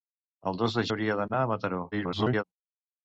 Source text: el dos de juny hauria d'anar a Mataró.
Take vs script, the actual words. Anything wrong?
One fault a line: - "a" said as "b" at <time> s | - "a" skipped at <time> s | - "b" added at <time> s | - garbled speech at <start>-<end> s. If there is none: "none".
- "juny" skipped at 0.8 s
- garbled speech at 1.9-2.4 s